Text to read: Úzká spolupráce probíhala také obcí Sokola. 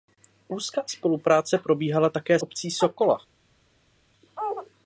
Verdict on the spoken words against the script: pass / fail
pass